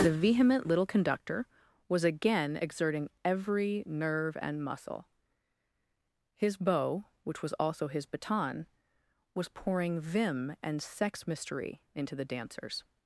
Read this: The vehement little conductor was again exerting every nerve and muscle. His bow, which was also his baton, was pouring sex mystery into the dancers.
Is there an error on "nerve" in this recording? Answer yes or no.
no